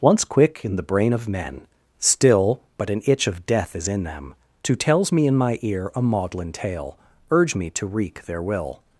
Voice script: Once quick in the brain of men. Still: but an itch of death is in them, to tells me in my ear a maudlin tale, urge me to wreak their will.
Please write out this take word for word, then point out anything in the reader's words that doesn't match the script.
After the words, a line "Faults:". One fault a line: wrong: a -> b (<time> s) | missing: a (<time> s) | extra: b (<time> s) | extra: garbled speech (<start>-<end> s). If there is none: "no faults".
Once quick in the brain of men. Still: but an itch of death is in them, to tells me in my ear a maudlin tale, urge me to wreak their will.
Faults:
no faults